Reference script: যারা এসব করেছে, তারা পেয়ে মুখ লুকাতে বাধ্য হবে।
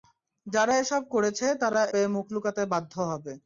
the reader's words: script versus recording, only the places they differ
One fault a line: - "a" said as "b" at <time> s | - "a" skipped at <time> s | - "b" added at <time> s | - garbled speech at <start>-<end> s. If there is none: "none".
none